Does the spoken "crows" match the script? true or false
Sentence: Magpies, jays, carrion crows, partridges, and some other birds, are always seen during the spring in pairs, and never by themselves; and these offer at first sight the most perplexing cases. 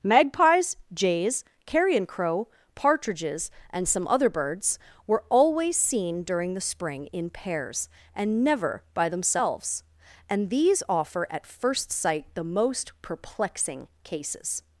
false